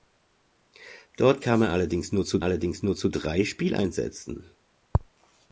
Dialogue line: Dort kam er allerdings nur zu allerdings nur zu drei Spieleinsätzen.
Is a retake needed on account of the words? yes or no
no